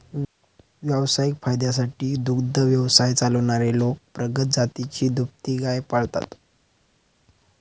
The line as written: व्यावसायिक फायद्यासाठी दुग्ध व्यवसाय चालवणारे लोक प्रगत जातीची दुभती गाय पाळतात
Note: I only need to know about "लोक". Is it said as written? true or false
true